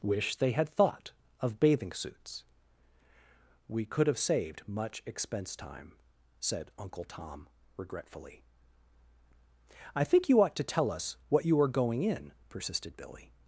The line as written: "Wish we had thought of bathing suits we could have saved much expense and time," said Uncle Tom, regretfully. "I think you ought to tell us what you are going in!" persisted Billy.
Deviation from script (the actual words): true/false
true